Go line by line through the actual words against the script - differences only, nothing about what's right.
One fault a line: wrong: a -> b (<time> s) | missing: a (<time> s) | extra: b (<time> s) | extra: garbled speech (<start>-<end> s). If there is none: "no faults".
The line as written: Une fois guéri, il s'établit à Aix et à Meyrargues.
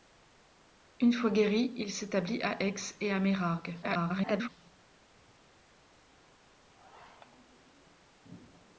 extra: garbled speech (3.8-4.5 s)